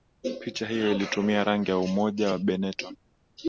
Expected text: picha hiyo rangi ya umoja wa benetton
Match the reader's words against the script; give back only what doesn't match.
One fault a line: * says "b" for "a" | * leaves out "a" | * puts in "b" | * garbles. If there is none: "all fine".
* puts in "ilitumia"